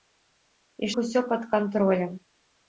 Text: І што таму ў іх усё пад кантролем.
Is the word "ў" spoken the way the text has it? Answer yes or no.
no